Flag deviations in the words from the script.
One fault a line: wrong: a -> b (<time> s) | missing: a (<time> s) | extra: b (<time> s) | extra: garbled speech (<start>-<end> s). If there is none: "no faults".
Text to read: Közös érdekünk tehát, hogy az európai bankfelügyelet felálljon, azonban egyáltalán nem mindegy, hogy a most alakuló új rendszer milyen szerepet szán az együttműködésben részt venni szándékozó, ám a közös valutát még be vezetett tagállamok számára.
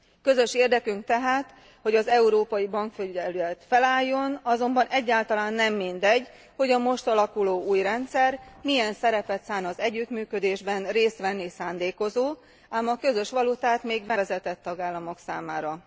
no faults